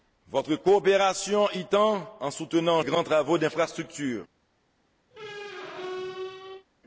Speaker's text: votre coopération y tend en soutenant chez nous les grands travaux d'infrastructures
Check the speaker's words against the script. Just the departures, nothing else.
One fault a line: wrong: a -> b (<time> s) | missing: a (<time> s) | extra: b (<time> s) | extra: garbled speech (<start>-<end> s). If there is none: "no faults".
missing: chez nous les (2.8 s)